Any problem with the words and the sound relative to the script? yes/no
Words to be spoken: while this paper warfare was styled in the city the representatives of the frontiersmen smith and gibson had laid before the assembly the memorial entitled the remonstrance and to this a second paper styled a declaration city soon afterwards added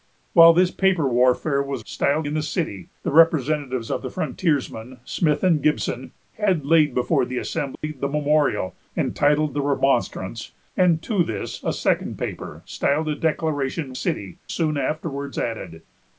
yes